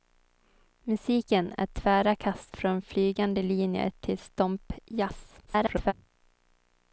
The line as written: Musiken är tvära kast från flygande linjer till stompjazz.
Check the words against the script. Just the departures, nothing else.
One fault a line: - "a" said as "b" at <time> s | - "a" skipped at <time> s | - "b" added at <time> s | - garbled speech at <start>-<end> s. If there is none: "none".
- garbled speech at 5.5-5.9 s